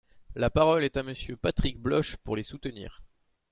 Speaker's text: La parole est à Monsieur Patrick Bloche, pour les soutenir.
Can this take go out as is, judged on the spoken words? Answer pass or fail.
pass